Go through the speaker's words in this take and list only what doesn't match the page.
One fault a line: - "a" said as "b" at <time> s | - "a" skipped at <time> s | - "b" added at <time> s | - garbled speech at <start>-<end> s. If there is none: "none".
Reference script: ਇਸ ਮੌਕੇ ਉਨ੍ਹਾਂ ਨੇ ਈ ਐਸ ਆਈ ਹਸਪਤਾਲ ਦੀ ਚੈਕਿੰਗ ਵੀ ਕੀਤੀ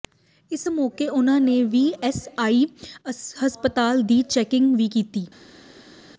none